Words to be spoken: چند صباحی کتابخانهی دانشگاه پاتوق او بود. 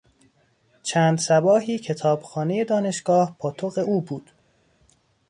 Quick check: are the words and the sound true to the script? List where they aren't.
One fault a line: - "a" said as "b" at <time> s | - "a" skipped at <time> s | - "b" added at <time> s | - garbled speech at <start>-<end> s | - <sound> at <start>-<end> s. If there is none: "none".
none